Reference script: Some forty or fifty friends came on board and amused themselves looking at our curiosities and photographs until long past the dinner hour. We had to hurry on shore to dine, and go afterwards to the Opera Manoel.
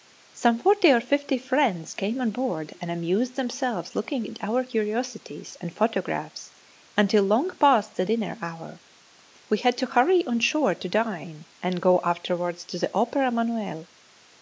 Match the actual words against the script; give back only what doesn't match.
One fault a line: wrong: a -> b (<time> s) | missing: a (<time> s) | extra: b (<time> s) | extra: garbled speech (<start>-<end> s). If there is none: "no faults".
no faults